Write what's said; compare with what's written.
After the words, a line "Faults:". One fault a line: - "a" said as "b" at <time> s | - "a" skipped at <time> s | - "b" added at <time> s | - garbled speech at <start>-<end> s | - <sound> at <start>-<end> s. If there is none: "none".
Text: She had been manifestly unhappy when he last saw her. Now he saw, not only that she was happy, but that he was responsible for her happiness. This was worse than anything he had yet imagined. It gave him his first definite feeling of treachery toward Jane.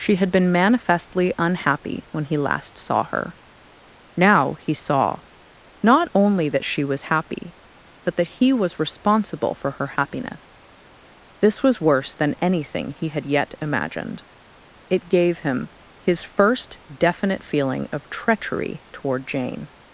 She had been manifestly unhappy when he last saw her. Now he saw, not only that she was happy, but that he was responsible for her happiness. This was worse than anything he had yet imagined. It gave him his first definite feeling of treachery toward Jane.
Faults:
none